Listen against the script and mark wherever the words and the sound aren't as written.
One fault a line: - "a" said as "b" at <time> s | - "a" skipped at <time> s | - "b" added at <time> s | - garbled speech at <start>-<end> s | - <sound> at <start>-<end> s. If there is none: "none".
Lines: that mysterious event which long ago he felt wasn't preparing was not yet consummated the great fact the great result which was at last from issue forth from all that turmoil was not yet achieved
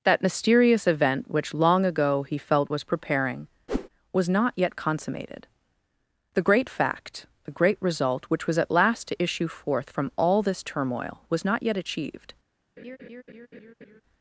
- "wasn't" said as "was" at 2.7 s
- whoosh at 3.7-3.9 s
- "from" said as "to" at 9.1 s
- "that" said as "this" at 10.4 s
- laugh at 12.8-14.0 s